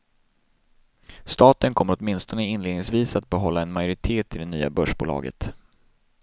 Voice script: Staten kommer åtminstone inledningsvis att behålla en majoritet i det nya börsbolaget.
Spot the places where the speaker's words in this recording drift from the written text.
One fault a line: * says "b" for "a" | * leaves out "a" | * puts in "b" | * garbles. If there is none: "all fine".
all fine